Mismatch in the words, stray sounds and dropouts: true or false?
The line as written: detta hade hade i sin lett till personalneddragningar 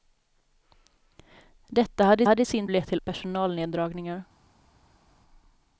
false